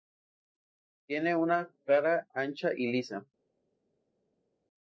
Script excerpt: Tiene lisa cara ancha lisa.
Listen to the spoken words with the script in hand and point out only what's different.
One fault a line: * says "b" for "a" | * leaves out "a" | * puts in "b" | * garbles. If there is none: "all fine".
* says "una" for "lisa"
* puts in "y"